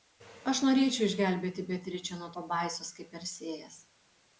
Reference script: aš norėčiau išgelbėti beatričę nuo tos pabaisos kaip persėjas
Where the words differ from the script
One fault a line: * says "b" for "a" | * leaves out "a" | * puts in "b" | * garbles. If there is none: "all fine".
* leaves out "tos"